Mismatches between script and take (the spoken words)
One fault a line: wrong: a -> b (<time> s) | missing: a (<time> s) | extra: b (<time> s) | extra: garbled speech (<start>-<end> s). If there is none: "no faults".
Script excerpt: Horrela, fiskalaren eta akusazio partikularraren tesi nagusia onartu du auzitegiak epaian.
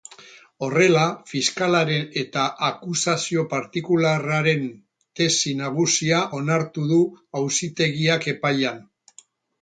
no faults